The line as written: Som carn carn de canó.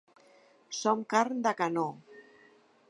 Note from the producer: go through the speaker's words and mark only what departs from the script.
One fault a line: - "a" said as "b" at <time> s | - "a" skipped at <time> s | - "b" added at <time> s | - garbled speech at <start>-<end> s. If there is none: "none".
- "carn" skipped at 1.4 s